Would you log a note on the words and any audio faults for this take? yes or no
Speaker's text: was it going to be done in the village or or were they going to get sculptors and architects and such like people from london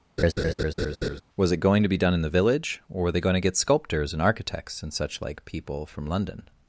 yes